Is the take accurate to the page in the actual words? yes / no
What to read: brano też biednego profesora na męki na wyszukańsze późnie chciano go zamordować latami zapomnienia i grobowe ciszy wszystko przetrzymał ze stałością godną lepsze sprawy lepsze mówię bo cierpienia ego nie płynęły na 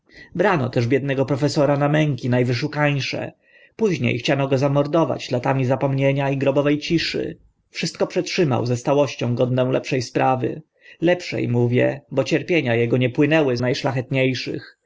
yes